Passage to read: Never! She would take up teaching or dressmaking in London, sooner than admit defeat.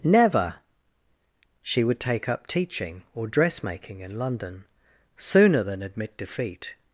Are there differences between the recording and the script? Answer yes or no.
no